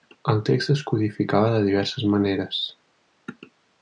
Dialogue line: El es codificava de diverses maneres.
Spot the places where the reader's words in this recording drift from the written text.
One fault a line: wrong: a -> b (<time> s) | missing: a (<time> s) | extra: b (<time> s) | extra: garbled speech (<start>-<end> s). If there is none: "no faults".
extra: text (0.5 s)